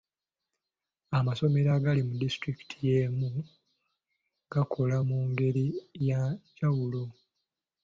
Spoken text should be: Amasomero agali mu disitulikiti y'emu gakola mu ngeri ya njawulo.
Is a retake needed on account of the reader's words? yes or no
no